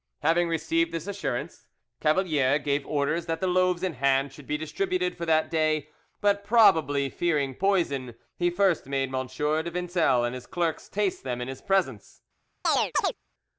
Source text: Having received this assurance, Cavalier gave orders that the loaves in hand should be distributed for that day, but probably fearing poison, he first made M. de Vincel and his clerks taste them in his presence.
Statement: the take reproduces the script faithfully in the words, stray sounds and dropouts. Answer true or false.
false